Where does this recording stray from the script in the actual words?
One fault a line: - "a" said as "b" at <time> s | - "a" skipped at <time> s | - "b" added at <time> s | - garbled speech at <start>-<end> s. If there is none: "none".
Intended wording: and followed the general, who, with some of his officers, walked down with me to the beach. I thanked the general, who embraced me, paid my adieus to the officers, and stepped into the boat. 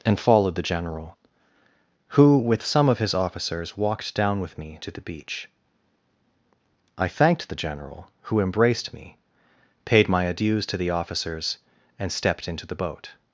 none